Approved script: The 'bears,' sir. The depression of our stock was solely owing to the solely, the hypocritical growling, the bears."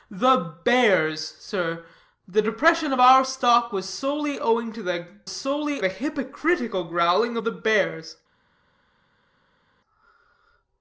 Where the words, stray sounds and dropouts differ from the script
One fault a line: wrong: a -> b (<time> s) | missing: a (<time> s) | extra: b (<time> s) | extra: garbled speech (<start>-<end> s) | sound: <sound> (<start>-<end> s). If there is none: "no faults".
no faults